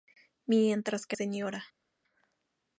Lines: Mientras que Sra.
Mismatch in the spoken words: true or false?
false